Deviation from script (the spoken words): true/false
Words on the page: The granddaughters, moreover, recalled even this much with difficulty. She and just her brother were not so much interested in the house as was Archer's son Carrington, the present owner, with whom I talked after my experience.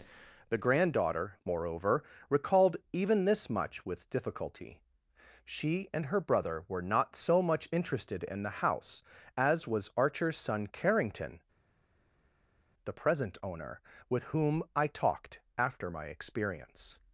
true